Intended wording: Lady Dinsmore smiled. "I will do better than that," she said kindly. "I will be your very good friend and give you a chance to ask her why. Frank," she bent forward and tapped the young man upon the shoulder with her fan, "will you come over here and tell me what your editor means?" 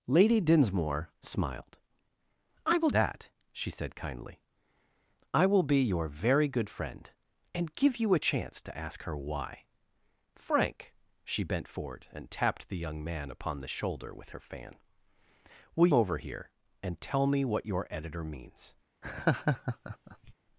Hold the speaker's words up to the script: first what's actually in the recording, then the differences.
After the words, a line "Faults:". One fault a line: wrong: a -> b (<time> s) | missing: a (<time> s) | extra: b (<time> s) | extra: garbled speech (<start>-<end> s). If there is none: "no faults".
Lady Dinsmore smiled. "I will that," she said kindly. "I will be your very good friend and give you a chance to ask her why. Frank," she bent forward and tapped the young man upon the shoulder with her fan, "will over here and tell me what your editor means?"
Faults:
missing: do better than (2.9 s)
missing: you come (15.9 s)